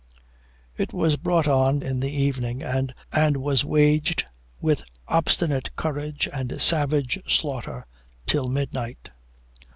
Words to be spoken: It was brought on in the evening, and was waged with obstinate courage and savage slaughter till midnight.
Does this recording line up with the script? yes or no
yes